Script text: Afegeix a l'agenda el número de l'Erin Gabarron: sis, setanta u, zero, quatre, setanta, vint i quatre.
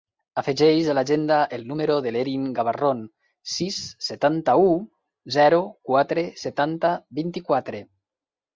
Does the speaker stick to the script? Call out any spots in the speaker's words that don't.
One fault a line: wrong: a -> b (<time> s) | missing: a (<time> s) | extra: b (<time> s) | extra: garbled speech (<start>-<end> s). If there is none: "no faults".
no faults